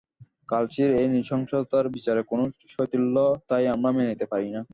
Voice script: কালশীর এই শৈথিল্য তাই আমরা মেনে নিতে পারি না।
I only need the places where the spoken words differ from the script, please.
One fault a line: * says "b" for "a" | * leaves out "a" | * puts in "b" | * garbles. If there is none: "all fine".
* puts in "নৃশংসতার বিচারে কোনো"